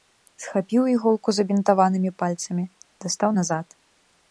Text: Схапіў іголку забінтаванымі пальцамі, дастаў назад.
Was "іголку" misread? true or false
false